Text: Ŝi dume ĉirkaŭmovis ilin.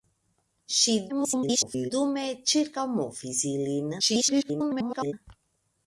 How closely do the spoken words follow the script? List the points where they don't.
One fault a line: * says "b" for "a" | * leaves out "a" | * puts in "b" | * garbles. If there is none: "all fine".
* garbles
* garbles